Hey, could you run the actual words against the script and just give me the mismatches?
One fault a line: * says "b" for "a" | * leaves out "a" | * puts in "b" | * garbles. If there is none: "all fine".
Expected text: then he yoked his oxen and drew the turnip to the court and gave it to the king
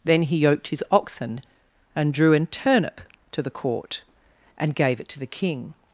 * says "an" for "the"